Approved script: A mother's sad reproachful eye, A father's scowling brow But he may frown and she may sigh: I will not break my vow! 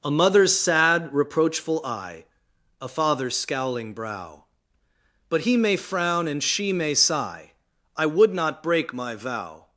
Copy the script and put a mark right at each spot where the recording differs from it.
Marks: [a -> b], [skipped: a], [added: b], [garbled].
A mother's sad reproachful eye, A father's scowling brow But he may frown and she may sigh: I [will -> would] not break my vow!